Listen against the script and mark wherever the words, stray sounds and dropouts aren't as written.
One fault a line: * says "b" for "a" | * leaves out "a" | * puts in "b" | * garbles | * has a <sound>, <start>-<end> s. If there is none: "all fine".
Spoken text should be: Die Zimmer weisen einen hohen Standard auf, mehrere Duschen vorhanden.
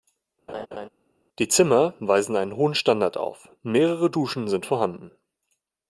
* has a laugh, 0.5-0.9 s
* puts in "sind"